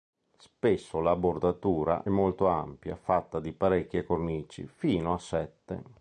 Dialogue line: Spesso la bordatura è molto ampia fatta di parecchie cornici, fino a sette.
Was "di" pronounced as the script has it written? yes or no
yes